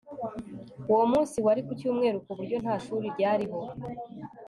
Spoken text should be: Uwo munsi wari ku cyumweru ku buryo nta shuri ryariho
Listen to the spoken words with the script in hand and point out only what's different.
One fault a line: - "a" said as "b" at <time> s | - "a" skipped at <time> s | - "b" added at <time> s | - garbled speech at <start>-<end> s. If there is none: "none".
none